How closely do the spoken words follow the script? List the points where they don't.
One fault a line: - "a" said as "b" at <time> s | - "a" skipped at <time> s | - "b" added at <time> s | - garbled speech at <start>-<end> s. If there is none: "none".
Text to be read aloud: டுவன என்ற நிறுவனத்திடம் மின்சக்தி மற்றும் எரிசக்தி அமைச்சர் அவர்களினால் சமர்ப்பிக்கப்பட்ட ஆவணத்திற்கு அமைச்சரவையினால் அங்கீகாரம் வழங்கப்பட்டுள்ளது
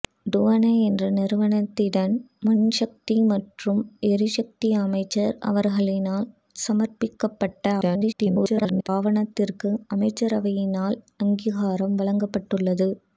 - garbled speech at 7.8-8.9 s